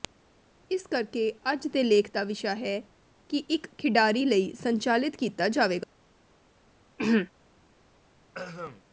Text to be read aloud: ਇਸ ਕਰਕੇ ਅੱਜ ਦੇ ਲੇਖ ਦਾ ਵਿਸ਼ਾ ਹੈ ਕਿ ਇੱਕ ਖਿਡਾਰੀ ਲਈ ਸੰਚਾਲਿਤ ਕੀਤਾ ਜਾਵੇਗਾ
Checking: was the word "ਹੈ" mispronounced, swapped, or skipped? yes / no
no